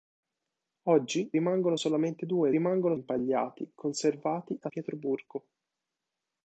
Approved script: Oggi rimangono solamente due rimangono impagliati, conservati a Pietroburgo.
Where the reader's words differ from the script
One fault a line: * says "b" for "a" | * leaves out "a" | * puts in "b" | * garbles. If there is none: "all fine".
all fine